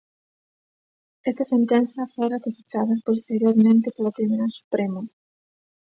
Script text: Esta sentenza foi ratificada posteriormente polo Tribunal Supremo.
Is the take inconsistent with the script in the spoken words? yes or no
no